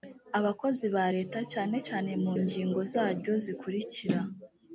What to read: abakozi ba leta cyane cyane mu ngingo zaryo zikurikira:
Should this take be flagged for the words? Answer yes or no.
no